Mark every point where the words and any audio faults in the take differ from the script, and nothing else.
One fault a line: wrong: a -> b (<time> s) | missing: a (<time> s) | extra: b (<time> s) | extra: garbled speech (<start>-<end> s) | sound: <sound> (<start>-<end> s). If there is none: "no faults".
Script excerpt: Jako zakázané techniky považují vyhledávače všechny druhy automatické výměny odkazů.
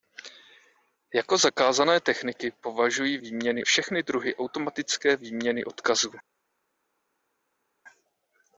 wrong: vyhledávače -> výměny (3.2 s)